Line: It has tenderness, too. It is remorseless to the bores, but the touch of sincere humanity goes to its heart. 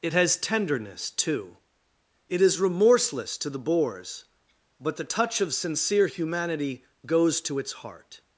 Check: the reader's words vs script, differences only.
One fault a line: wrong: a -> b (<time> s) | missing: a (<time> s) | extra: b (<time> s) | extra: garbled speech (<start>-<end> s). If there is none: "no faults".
no faults